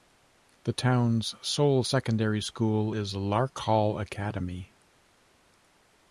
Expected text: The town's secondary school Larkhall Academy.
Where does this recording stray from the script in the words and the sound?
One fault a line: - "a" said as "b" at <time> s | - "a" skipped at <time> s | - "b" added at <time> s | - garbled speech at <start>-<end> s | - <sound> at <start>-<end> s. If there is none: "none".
- "sole" added at 1.4 s
- "is" added at 2.9 s